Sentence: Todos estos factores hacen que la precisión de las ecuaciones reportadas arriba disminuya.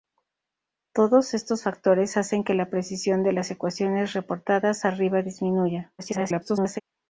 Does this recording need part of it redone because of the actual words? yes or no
yes